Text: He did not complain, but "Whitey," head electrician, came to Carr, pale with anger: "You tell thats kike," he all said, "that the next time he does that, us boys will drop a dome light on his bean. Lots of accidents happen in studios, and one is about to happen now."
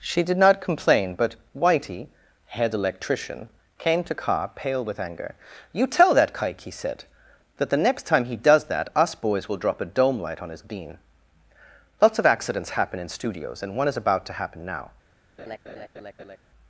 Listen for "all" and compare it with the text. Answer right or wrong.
wrong